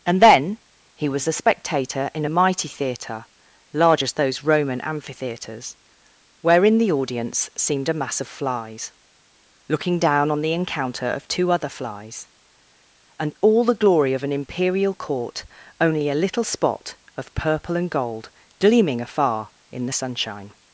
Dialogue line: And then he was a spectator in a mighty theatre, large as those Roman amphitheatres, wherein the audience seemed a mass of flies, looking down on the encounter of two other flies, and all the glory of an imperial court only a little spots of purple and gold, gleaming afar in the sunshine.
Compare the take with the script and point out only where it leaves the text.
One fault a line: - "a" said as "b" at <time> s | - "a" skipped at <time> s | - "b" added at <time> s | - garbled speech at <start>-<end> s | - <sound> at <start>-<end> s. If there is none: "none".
- "spots" said as "spot" at 16.4 s